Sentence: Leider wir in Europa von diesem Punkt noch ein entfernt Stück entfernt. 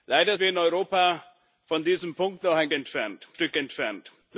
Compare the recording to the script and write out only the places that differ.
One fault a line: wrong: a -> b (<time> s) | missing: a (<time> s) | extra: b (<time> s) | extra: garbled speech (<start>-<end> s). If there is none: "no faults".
no faults